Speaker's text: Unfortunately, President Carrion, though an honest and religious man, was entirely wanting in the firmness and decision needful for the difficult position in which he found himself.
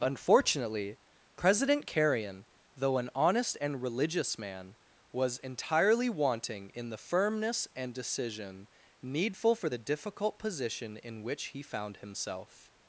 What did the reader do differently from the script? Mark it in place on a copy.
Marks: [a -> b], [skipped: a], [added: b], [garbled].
Unfortunately, President Carrion, though an honest and religious man, was entirely wanting in the firmness and decision needful for the difficult position in which he found himself.